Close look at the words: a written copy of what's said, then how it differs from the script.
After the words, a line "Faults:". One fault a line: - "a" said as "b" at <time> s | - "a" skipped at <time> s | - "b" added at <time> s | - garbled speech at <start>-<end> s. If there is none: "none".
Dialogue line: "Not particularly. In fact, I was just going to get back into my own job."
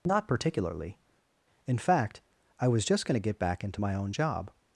"Not particularly. In fact, I was just going to get back into my own job."
Faults:
none